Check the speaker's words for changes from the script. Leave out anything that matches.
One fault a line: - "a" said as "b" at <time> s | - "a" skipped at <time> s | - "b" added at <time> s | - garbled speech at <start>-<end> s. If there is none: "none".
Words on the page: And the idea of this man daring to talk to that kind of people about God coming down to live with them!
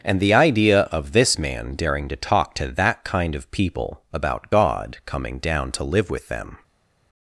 none